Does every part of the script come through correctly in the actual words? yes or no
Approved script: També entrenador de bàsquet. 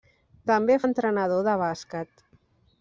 yes